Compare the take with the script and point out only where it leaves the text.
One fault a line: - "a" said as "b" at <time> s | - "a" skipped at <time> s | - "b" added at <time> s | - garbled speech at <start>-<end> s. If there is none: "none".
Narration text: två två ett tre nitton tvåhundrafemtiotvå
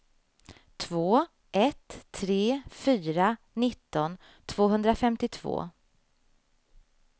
- "två" skipped at 1.2 s
- "fyra" added at 2.7 s